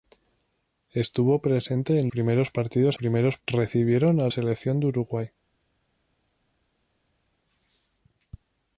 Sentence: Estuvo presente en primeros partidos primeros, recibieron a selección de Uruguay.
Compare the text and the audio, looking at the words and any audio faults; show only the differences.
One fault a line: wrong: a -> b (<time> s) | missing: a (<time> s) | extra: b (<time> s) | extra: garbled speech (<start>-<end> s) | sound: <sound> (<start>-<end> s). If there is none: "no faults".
no faults